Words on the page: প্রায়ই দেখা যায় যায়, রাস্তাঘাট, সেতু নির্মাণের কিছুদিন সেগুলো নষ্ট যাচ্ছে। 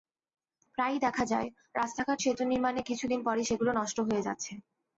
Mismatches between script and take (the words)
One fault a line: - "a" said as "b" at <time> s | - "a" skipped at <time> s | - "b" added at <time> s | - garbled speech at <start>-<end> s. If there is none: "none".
- "যায়" skipped at 1.5 s
- "পরই" added at 3.3 s
- "হয়ে" added at 4.1 s